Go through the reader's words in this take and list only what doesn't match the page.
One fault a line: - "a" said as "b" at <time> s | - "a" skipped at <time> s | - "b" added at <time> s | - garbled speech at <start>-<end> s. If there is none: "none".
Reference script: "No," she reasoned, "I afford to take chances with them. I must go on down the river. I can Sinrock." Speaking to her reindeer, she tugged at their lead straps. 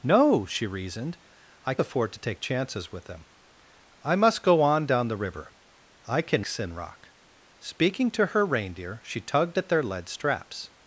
none